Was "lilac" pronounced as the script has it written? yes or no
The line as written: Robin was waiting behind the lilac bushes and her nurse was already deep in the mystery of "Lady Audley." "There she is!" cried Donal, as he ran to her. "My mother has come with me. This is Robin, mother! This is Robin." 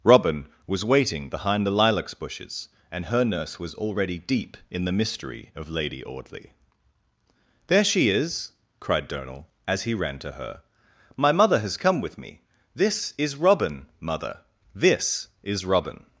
no